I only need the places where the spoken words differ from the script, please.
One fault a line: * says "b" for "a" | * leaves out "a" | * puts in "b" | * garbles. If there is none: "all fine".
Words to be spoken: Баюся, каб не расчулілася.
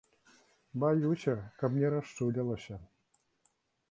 all fine